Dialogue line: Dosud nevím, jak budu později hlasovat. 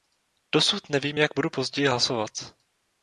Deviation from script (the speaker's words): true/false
false